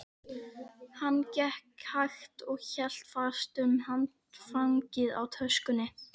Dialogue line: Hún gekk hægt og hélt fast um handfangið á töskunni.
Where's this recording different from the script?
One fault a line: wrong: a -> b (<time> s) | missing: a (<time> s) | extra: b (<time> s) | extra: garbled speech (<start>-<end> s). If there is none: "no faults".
wrong: Hún -> Hann (1.0 s)